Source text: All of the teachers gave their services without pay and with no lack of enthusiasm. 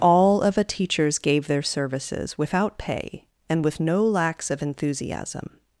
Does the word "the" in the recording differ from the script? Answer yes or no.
yes